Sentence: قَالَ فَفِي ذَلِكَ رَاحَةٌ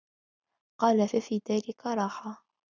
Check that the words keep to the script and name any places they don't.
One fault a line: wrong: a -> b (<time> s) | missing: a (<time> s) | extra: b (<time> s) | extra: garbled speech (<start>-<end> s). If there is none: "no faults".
no faults